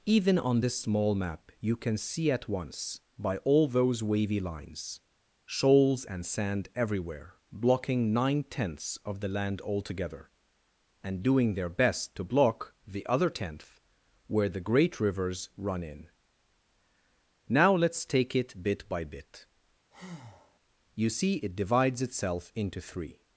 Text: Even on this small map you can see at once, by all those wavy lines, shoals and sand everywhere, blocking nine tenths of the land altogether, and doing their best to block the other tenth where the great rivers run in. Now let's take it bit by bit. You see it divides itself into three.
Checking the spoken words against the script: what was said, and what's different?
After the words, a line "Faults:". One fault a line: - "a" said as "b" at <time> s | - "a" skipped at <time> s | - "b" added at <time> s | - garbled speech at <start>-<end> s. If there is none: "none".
Even on this small map you can see at once, by all those wavy lines, shoals and sand everywhere, blocking nine tenths of the land altogether, and doing their best to block the other tenth where the great rivers run in. Now let's take it bit by bit. You see it divides itself into three.
Faults:
none